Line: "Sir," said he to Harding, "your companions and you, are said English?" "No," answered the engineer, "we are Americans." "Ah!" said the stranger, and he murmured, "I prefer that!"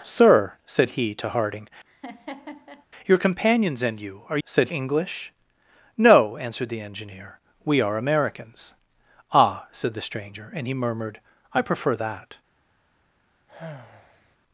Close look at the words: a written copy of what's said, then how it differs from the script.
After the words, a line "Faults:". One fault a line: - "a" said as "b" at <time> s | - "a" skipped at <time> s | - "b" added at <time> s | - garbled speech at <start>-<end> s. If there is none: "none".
"Sir," said he to Harding, "your companions and you, are said English?" "No," answered the engineer, "we are Americans." "Ah!" said the stranger, and he murmured, "I prefer that!"
Faults:
none